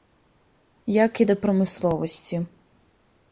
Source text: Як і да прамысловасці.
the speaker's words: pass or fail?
pass